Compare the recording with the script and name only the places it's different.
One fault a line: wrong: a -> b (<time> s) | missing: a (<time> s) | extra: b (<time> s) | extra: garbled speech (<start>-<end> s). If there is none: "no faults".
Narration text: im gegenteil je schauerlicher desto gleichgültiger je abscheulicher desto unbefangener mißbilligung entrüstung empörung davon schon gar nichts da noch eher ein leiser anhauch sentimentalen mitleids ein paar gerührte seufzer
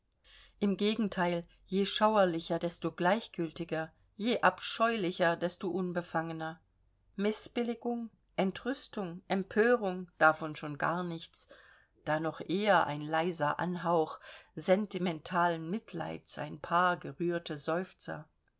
no faults